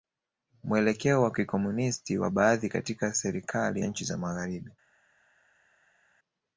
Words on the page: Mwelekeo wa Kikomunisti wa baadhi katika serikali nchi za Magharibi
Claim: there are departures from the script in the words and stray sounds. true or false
false